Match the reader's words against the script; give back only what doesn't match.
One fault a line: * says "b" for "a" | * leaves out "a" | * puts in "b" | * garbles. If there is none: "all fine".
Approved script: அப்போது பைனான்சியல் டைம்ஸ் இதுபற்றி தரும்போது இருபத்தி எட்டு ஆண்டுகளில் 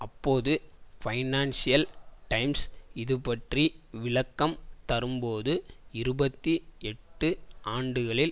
* puts in "விளக்கம்"